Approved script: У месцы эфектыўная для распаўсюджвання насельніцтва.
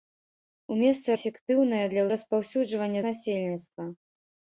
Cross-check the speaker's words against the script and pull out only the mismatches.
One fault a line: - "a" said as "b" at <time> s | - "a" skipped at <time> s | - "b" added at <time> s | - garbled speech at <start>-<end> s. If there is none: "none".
none